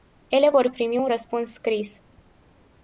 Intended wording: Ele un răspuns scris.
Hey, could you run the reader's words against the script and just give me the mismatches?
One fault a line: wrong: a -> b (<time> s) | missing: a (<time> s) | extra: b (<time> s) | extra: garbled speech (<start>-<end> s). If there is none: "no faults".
extra: vor primi (0.5 s)